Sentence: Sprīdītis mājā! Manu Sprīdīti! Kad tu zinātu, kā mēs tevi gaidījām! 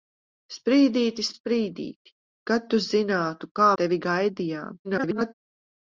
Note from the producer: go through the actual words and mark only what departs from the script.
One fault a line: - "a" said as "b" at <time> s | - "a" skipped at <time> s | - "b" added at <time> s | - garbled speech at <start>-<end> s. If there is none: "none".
- "mājā Manu" skipped at 1.3 s
- "mēs" skipped at 3.7 s
- garbled speech at 4.8-5.3 s